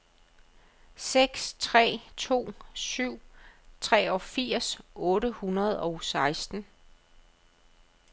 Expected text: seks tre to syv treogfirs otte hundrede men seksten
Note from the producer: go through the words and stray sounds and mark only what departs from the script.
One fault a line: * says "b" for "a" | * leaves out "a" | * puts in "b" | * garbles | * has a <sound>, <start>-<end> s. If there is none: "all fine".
* says "og" for "men"